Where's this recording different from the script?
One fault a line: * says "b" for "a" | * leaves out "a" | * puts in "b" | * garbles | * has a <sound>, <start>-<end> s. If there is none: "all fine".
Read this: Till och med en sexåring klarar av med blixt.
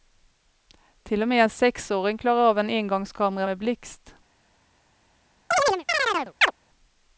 * puts in "en engångskamera"
* has a chirp, 5.5-6.5 s